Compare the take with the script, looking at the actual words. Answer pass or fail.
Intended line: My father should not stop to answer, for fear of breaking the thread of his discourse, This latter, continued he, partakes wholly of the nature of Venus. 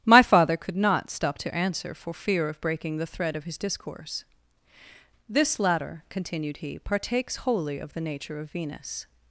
fail